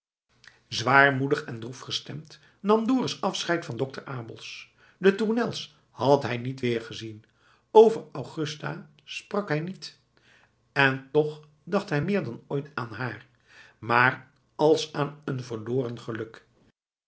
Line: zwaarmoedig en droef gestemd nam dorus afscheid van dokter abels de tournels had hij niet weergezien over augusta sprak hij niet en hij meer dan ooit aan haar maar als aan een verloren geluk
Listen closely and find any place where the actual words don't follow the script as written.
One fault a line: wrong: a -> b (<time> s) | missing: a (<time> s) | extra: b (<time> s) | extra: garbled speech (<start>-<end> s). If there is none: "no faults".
extra: toch dacht (11.1 s)